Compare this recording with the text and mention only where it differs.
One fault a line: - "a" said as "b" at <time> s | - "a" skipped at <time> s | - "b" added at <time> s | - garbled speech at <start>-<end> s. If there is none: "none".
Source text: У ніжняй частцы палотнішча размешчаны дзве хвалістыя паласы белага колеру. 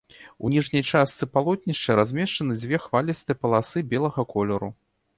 none